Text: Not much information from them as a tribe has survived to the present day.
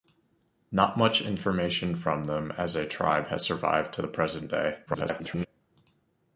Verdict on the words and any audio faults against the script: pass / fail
fail